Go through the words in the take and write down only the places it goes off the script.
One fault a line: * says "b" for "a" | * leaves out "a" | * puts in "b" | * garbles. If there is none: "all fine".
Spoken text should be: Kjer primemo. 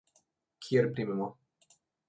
all fine